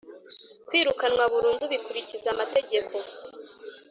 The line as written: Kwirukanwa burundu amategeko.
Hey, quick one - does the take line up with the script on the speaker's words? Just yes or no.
no